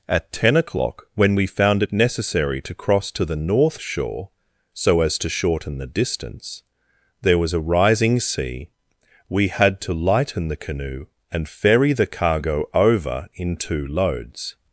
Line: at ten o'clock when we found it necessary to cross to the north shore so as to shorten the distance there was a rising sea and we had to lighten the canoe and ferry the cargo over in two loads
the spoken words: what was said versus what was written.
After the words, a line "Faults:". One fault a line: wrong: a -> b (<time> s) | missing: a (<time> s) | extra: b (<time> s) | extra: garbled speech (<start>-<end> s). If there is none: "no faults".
at ten o'clock when we found it necessary to cross to the north shore so as to shorten the distance there was a rising sea we had to lighten the canoe and ferry the cargo over in two loads
Faults:
missing: and (8.7 s)